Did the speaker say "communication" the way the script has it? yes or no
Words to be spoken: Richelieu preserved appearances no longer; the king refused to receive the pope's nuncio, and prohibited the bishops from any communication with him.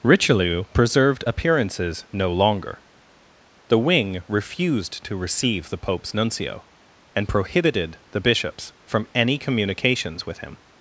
no